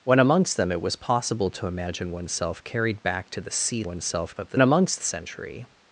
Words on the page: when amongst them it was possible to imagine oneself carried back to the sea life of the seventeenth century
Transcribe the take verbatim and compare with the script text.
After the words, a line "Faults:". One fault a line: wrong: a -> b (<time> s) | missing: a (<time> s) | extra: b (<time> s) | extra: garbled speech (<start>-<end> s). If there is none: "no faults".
when amongst them it was possible to imagine oneself carried back to the sea oneself of the amongst century
Faults:
wrong: life -> oneself (3.8 s)
wrong: seventeenth -> amongst (4.6 s)